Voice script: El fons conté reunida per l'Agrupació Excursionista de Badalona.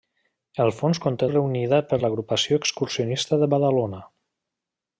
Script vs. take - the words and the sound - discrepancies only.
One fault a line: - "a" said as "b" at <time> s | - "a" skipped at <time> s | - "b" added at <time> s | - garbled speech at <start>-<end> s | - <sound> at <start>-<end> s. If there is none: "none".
none